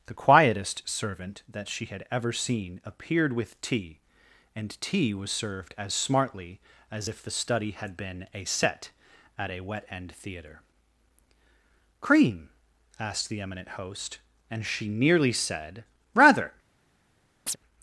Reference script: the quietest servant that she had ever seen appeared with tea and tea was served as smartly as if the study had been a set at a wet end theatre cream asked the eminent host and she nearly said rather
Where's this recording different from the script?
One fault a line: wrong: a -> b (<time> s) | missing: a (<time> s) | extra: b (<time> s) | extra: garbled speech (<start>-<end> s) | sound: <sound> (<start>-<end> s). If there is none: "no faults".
sound: chirp (17.5-17.6 s)